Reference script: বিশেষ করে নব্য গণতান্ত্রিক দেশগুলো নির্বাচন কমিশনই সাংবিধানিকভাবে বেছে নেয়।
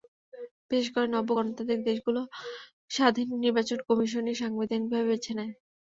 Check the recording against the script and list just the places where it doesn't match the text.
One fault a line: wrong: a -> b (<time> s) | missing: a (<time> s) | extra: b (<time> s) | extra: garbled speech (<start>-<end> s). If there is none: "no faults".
extra: স্বাধীন (2.9 s)